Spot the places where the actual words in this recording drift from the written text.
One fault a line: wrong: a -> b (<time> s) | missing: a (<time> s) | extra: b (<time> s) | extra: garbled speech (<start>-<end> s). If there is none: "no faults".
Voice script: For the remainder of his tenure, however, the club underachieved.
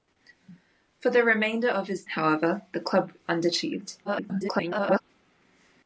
missing: tenure (2.1 s)
extra: garbled speech (4.0-5.0 s)